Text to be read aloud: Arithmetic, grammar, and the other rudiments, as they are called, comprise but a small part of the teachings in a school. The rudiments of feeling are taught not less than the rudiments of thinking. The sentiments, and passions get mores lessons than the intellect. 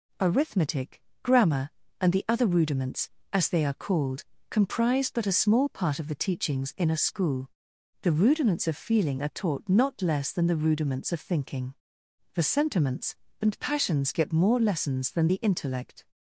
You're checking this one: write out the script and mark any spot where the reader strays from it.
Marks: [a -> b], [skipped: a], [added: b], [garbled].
Arithmetic, grammar, and the other rudiments, as they are called, comprise but a small part of the teachings in a school. The rudiments of feeling are taught not less than the rudiments of thinking. The sentiments, and passions get [mores -> more] lessons than the intellect.